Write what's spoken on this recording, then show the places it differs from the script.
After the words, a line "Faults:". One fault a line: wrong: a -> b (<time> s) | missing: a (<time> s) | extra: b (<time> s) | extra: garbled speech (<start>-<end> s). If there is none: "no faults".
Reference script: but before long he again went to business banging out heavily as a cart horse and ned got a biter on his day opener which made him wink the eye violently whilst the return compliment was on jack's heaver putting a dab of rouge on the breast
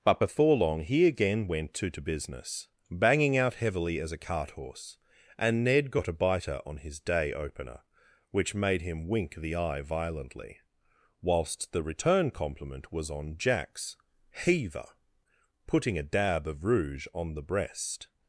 but before long he again went to to business banging out heavily as a cart horse and ned got a biter on his day opener which made him wink the eye violently whilst the return compliment was on jack's heaver putting a dab of rouge on the breast
Faults:
extra: to (1.9 s)